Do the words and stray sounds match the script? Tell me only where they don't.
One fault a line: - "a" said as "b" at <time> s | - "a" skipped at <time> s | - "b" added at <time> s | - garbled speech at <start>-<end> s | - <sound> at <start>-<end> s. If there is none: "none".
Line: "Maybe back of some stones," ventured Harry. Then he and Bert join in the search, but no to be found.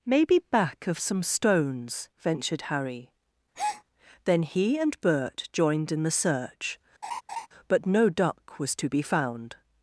- breath at 3.5-3.8 s
- "join" said as "joined" at 5.5 s
- laugh at 7.0-7.5 s
- "duck was" added at 8.1 s